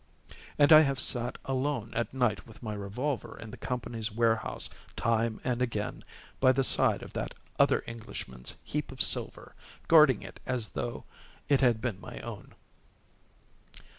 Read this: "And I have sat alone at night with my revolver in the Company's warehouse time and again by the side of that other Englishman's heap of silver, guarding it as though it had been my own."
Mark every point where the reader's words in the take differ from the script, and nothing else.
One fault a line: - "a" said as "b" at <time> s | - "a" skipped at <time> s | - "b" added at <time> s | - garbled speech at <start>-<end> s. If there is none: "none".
none